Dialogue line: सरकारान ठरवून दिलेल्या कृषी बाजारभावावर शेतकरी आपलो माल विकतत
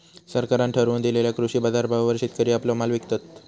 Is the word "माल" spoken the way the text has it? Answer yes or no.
yes